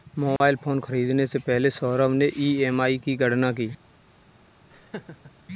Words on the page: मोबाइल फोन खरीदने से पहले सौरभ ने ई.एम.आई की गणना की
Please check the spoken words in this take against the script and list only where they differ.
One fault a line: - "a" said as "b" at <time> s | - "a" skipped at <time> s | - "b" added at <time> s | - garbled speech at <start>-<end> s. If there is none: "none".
none